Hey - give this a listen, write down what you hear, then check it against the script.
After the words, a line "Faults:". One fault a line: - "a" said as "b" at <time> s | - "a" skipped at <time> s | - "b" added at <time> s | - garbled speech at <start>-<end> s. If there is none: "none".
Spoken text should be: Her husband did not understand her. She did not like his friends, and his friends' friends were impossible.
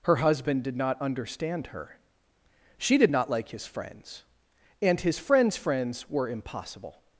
Her husband did not understand her. She did not like his friends, and his friends' friends were impossible.
Faults:
none